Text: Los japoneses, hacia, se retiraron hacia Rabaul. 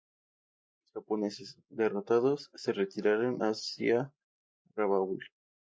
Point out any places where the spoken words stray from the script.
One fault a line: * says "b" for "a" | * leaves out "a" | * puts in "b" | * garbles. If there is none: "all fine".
* says "derrotados" for "hacia"